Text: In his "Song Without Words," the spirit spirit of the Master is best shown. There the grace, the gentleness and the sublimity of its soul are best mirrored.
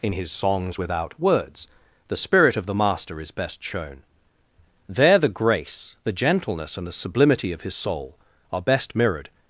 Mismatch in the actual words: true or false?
true